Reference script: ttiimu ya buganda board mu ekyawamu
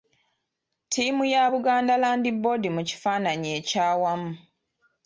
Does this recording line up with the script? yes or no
no